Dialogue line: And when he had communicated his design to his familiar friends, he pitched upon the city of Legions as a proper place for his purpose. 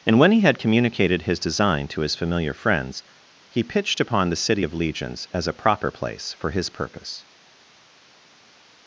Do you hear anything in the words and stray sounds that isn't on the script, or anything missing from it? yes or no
no